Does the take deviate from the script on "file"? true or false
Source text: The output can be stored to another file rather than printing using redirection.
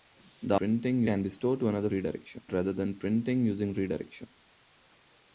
true